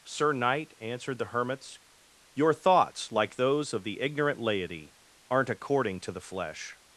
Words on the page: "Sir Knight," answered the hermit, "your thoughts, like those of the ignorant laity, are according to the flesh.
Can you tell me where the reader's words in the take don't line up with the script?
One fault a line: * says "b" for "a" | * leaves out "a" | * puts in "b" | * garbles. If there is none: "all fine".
* says "hermits" for "hermit"
* says "aren't" for "are"